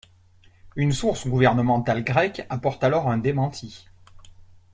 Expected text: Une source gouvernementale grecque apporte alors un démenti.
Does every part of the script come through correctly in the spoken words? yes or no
yes